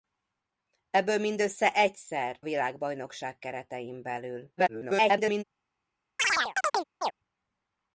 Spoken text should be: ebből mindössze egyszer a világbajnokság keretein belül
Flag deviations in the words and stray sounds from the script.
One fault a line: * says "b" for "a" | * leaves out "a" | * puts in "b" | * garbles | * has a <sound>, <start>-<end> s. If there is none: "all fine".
* leaves out "a"
* garbles
* has a chirp, 6.2-7.1 s